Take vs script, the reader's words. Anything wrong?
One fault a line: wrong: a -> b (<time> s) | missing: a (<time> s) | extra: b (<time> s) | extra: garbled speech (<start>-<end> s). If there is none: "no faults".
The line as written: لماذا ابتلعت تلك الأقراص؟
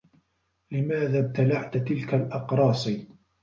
no faults